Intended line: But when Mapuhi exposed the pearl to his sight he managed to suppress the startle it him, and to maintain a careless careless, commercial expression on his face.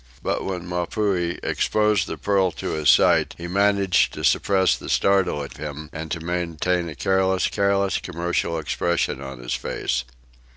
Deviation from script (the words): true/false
false